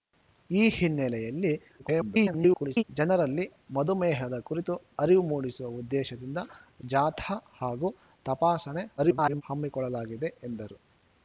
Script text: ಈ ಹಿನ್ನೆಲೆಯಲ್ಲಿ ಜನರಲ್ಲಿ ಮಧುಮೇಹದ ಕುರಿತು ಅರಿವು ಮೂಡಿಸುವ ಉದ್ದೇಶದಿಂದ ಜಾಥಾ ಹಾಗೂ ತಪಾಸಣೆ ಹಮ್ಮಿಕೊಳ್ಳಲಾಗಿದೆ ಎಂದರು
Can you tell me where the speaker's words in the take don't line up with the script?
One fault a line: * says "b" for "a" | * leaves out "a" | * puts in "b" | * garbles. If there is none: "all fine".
* garbles
* garbles